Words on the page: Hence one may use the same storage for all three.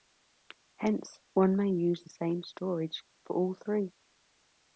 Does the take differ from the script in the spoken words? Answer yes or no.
no